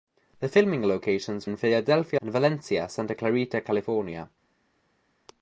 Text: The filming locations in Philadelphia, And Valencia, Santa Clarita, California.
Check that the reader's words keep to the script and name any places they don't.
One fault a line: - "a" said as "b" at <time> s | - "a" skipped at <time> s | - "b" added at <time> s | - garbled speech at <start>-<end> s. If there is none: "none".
none